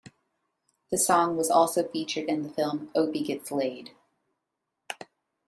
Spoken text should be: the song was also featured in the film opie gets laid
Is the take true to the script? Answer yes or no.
yes